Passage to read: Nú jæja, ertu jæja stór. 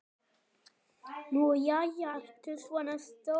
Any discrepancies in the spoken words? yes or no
yes